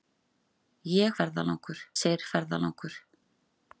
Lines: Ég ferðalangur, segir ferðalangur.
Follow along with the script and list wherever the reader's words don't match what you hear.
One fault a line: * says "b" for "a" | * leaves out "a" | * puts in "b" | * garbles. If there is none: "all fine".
all fine